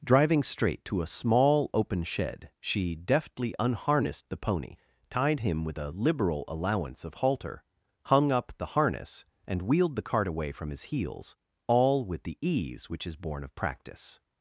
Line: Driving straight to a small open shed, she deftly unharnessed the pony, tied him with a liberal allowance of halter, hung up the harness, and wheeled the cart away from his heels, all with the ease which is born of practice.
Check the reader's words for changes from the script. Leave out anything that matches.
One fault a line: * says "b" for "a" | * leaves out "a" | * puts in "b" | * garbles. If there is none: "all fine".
all fine